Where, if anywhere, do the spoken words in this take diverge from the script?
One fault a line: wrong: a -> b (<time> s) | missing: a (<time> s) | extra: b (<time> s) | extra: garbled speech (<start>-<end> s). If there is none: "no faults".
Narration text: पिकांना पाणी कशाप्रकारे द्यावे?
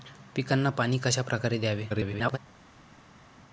extra: garbled speech (1.9-2.4 s)